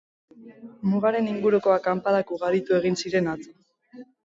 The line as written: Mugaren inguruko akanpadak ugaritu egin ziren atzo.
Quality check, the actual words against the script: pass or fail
pass